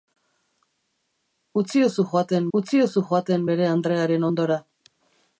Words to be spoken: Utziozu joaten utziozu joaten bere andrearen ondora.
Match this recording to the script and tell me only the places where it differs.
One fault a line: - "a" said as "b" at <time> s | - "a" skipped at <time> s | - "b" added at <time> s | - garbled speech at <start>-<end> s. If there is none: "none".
none